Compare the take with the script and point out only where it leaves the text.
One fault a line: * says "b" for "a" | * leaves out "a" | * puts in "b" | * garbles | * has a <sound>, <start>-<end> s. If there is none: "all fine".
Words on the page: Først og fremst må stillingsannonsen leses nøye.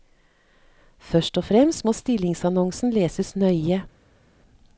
all fine